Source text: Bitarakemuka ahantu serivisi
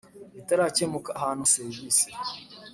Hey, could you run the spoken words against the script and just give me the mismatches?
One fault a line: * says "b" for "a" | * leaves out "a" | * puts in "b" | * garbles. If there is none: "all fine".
all fine